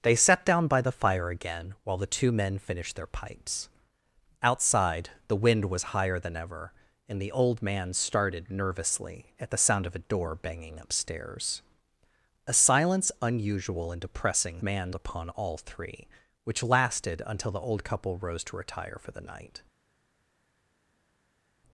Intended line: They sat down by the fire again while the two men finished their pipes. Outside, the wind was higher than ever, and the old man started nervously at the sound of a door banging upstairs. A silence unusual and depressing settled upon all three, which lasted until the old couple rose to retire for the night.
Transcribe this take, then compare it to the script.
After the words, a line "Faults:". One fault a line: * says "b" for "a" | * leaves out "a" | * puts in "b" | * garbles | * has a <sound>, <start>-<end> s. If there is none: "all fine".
They sat down by the fire again while the two men finished their pipes. Outside, the wind was higher than ever, and the old man started nervously at the sound of a door banging upstairs. A silence unusual and depressing man upon all three, which lasted until the old couple rose to retire for the night.
Faults:
* says "man" for "settled"